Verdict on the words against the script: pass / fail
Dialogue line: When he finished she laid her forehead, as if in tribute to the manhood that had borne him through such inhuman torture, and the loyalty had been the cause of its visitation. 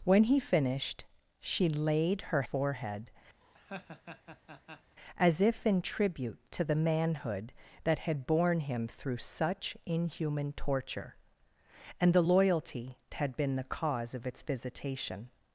pass